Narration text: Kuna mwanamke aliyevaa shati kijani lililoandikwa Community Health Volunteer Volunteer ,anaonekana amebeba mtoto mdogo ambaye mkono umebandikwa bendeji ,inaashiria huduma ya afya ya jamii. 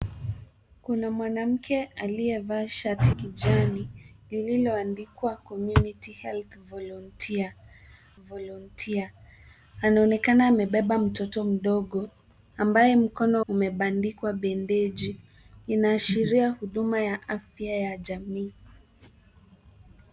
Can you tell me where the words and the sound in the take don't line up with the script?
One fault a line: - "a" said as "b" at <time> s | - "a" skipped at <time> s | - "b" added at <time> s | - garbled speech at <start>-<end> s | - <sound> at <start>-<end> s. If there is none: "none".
none